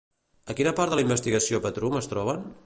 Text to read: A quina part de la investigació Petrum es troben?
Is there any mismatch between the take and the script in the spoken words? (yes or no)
no